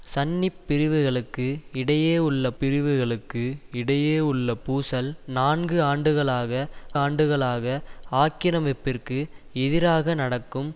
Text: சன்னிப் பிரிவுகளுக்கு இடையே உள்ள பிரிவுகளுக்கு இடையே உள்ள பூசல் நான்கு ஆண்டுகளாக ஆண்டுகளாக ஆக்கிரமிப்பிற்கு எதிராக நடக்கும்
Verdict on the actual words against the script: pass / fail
pass